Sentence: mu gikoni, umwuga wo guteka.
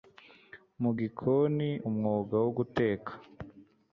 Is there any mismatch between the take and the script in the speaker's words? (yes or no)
no